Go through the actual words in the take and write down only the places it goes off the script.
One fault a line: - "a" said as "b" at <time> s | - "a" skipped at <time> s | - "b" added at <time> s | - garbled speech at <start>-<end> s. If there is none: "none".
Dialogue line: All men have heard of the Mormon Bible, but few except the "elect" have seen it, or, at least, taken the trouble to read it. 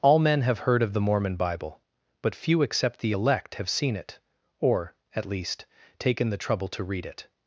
none